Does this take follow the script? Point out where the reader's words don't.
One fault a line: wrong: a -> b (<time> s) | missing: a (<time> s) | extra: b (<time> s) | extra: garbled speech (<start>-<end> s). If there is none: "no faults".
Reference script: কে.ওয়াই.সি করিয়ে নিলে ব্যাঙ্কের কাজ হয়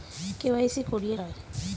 missing: নিলে ব্যাঙ্কের কাজ (1.1 s)